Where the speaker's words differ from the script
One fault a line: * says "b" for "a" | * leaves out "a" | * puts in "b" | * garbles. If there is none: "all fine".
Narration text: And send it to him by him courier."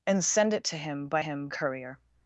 all fine